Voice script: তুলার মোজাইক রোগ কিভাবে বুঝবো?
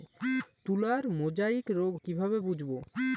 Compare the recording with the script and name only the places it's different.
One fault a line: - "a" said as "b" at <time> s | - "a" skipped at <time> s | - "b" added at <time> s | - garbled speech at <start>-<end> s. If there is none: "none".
none